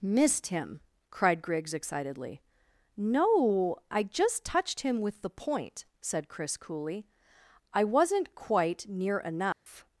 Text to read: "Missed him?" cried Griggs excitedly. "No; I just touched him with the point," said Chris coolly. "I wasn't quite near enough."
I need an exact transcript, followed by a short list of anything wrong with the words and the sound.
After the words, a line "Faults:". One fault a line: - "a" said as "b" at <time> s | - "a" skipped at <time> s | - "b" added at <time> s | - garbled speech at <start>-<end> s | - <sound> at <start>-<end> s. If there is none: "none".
"Missed him?" cried Griggs excitedly. "No; I just touched him with the point," said Chris coolly. "I wasn't quite near enough."
Faults:
- dropout at 9.5-9.7 s